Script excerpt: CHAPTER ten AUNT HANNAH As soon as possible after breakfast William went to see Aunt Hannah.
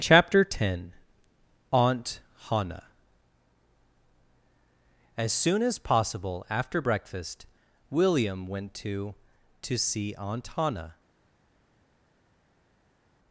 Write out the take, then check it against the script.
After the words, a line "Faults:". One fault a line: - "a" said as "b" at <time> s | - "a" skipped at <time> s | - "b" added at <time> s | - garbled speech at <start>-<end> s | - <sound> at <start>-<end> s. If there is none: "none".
CHAPTER ten AUNT HANNAH As soon as possible after breakfast William went to to see Aunt Hannah.
Faults:
- "to" added at 9.6 s